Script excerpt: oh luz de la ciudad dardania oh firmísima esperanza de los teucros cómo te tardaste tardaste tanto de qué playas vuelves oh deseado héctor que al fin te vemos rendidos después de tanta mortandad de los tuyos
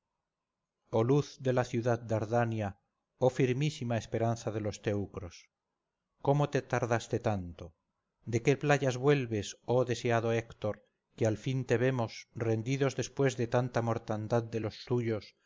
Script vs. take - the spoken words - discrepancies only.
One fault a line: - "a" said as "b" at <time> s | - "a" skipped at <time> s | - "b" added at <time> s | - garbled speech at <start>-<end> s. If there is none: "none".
- "tardaste" skipped at 7.2 s